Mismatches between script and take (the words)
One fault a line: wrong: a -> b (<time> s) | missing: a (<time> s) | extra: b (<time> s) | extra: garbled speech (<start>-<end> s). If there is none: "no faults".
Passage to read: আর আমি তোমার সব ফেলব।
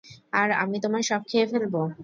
extra: খেয়ে (1.3 s)